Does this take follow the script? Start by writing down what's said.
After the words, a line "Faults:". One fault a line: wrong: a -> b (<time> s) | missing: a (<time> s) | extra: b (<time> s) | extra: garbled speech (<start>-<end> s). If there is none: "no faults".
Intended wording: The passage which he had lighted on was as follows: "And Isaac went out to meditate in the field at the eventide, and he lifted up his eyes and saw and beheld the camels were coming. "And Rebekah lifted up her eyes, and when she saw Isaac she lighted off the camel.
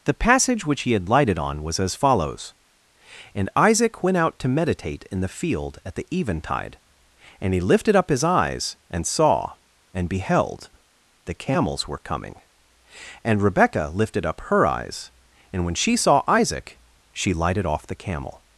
The passage which he had lighted on was as follows: "And Isaac went out to meditate in the field at the eventide, and he lifted up his eyes and saw and beheld the camels were coming. "And Rebekah lifted up her eyes, and when she saw Isaac she lighted off the camel.
Faults:
no faults